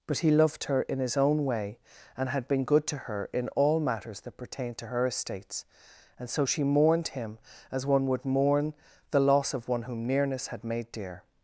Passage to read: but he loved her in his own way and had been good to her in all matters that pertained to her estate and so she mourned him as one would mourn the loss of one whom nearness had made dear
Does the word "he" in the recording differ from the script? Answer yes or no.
no